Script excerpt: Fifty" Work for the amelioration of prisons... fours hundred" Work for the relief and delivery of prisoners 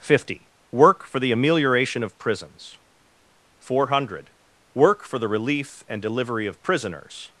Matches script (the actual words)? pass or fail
fail